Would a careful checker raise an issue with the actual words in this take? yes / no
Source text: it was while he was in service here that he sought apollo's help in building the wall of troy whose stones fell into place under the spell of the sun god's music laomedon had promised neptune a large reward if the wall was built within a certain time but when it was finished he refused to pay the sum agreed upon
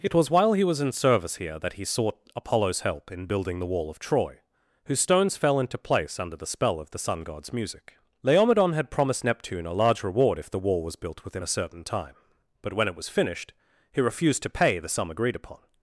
no